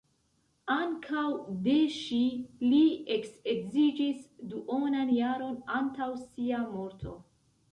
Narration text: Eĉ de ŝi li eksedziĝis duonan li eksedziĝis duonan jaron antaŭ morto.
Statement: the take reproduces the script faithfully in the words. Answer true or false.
false